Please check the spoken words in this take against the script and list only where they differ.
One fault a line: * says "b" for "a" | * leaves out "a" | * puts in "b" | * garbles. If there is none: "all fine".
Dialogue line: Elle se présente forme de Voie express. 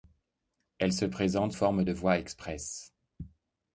all fine